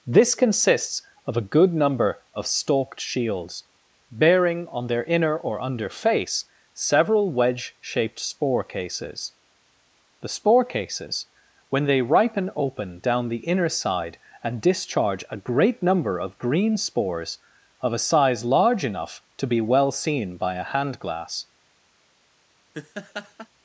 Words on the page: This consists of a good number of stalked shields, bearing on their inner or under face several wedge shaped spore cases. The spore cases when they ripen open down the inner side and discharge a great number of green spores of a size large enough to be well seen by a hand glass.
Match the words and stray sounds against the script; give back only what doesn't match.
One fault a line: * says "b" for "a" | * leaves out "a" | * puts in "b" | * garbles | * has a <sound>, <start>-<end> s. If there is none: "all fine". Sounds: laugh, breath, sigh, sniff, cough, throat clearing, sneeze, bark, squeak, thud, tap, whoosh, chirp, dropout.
* has a laugh, 22.7-23.5 s